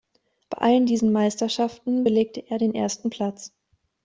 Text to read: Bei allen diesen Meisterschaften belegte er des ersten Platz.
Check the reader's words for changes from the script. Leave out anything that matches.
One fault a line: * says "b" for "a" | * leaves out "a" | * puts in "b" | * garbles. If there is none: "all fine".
* says "den" for "des"